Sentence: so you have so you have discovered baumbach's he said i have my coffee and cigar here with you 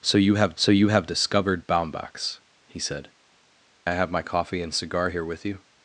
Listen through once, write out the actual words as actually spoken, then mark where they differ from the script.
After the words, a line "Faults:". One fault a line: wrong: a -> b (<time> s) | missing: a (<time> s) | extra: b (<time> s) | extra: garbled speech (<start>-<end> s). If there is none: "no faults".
so you have so you have discovered baumbach's he said i have my coffee and cigar here with you
Faults:
no faults